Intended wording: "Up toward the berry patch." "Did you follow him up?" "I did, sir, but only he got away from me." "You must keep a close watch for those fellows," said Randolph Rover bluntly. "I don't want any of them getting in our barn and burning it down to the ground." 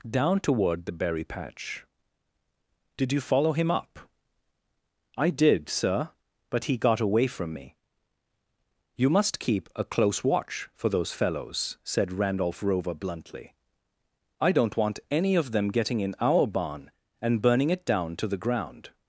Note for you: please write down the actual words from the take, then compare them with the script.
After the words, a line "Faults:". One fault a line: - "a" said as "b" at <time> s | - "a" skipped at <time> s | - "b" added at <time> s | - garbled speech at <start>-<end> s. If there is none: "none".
"Down toward the berry patch." "Did you follow him up?" "I did, sir, but he got away from me." "You must keep a close watch for those fellows," said Randolph Rover bluntly. "I don't want any of them getting in our barn and burning it down to the ground."
Faults:
- "Up" said as "Down" at 0.1 s
- "only" skipped at 6.6 s